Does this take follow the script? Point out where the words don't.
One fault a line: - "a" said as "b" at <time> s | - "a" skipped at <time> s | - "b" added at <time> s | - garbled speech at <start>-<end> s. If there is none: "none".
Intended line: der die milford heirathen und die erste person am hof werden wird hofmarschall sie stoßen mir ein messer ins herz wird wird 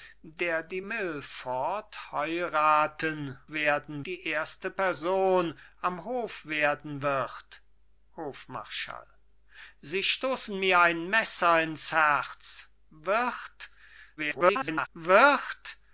- "und" said as "werden" at 3.5 s
- garbled speech at 14.2-14.9 s